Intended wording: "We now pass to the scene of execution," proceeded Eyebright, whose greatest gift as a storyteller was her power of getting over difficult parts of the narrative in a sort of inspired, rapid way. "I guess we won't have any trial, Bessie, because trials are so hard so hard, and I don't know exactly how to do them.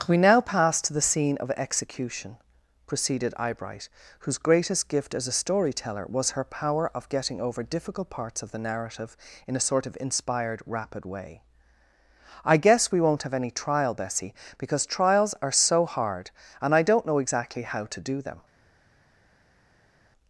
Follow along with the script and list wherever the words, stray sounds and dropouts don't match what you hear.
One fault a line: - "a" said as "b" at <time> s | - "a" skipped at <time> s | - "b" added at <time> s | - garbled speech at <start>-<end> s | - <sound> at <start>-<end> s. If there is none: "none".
- "so hard" skipped at 16.3 s